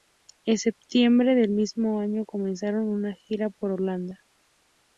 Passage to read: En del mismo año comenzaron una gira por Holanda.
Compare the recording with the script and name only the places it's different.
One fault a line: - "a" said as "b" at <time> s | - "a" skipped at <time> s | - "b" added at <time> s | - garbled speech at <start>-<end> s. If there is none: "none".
- "septiembre" added at 0.6 s